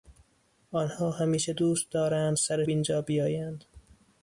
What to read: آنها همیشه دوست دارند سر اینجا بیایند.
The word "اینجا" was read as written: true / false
true